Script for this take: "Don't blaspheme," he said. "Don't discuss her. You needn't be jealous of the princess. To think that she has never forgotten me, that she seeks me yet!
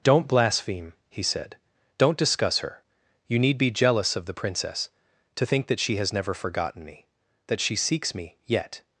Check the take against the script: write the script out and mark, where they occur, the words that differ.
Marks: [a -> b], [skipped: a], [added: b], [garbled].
"Don't blaspheme," he said. "Don't discuss her. You [needn't -> need] be jealous of the princess. To think that she has never forgotten me, that she seeks me yet!